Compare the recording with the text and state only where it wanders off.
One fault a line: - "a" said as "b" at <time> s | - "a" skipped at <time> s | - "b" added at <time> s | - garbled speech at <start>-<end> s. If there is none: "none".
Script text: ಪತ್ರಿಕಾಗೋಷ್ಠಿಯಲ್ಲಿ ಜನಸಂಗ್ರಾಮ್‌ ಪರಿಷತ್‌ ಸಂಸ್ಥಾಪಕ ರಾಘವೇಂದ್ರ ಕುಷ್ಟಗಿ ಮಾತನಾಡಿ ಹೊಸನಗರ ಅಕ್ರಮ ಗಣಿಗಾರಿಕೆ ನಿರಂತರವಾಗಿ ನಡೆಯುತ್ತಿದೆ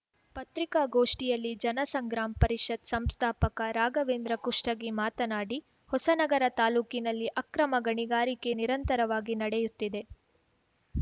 - "ತಾಲೂಕಿನಲ್ಲಿ" added at 6.6 s